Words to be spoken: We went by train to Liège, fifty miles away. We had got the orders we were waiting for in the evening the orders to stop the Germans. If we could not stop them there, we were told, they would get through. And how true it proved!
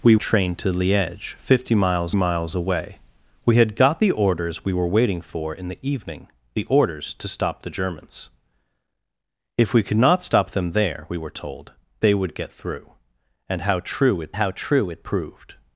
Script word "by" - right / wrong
wrong